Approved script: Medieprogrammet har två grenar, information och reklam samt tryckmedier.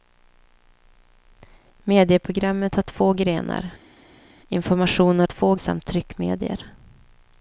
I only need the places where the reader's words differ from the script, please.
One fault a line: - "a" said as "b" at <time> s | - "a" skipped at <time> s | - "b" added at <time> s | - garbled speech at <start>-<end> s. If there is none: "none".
- "reklam" said as "två" at 5.2 s